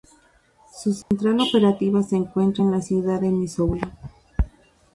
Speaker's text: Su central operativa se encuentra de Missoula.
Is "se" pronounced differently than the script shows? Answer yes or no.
no